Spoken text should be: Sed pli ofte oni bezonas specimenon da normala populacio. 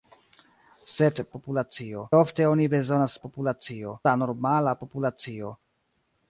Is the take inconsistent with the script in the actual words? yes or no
yes